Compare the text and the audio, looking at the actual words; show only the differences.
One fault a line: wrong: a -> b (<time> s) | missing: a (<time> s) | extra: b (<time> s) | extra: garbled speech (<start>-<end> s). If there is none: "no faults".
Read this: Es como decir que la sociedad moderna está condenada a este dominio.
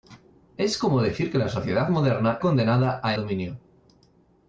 missing: está (2.4 s)
missing: este (3.2 s)